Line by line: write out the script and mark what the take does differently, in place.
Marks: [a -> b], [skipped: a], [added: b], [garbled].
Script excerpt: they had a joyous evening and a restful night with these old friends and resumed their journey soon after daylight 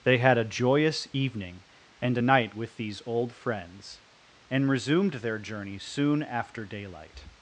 they had a joyous evening and a [skipped: restful] night with these old friends and resumed their journey soon after daylight